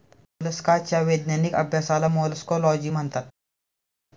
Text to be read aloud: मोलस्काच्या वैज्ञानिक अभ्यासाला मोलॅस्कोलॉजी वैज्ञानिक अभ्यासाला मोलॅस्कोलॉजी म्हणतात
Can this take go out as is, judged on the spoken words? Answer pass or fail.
fail